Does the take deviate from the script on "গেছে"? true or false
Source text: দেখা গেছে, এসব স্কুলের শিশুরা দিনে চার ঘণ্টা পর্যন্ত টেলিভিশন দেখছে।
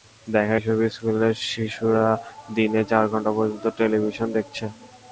true